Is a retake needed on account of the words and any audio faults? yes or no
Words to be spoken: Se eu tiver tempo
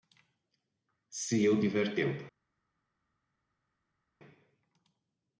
no